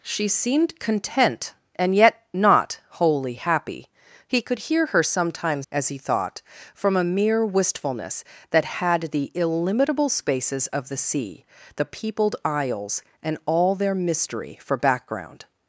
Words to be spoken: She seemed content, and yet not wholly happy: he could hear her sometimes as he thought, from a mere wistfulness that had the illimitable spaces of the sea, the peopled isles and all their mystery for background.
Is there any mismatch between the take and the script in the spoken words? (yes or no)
no